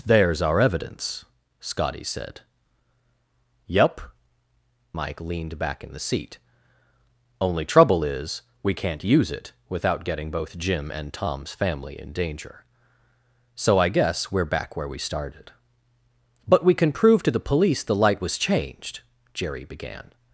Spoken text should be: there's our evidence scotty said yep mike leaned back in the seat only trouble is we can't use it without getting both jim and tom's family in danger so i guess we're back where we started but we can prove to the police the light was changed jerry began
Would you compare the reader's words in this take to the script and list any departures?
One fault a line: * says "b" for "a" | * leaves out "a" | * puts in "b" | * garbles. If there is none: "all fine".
all fine